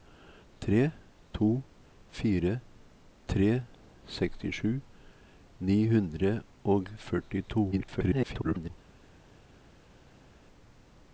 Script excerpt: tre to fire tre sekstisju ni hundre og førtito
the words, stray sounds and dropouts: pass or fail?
fail